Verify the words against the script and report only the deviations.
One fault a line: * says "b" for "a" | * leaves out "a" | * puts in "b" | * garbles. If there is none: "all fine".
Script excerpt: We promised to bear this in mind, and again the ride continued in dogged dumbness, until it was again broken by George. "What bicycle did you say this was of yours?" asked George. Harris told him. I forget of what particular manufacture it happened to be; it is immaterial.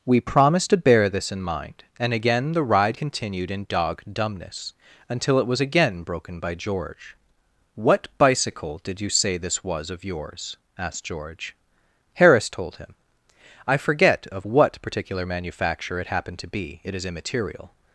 * says "dog" for "dogged"